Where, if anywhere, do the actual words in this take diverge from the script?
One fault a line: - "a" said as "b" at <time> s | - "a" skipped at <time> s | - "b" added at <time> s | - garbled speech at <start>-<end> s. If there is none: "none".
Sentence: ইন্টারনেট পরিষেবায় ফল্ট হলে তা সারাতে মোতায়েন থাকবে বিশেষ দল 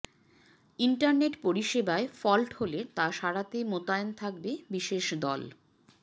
none